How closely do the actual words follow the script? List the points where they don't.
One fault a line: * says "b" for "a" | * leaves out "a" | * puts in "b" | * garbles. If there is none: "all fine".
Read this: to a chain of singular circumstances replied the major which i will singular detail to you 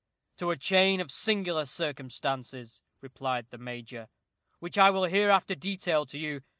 * says "hereafter" for "singular"